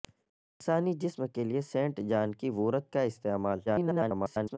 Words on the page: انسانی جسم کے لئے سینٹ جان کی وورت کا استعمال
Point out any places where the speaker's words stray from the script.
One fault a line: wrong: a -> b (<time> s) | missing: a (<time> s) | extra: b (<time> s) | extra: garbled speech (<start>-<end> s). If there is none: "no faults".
extra: garbled speech (3.7-4.6 s)